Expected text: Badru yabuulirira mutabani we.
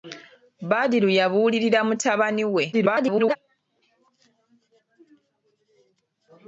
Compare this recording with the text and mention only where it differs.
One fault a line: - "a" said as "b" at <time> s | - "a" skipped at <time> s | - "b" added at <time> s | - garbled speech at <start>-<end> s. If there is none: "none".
- garbled speech at 2.7-3.4 s